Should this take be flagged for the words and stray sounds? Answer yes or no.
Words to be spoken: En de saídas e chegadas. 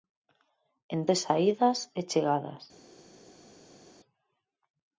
no